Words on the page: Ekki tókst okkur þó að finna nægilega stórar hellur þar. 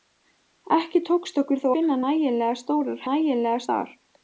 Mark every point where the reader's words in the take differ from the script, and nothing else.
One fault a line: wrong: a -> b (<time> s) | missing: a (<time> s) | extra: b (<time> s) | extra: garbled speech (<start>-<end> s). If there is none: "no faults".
missing: að (1.7 s)
wrong: hellur -> nægilega (3.1 s)